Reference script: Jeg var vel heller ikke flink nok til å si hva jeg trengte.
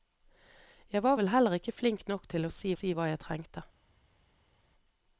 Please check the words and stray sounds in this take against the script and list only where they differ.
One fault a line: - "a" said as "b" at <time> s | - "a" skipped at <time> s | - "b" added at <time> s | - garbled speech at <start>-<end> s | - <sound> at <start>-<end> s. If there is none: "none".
- "si" added at 2.7 s